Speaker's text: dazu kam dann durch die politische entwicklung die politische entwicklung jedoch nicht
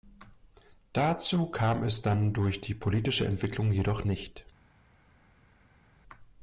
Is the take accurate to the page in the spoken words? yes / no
no